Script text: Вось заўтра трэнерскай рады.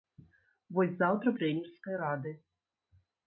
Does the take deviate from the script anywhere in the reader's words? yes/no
no